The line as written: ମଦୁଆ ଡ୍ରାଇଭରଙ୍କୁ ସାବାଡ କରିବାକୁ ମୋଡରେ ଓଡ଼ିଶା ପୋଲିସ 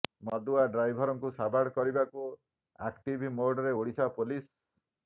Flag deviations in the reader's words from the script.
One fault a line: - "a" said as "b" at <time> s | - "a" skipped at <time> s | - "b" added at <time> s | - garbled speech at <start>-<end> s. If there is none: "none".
- "ଆକ୍ଟିଭ" added at 2.8 s